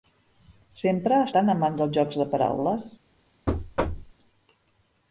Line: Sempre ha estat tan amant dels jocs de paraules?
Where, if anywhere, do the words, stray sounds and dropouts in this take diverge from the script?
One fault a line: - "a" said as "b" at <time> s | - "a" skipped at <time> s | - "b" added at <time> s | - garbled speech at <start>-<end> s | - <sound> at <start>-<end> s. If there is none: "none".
- "estat" skipped at 1.3 s
- thud at 3.5-4.1 s